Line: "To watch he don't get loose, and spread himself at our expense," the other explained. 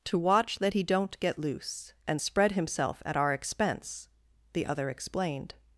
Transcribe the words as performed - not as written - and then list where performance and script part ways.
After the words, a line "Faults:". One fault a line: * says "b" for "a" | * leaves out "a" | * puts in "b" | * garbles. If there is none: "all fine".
"To watch that he don't get loose, and spread himself at our expense," the other explained.
Faults:
* puts in "that"